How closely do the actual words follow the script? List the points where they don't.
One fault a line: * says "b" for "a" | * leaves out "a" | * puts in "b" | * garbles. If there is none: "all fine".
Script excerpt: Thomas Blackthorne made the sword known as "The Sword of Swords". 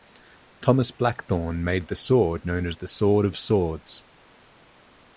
all fine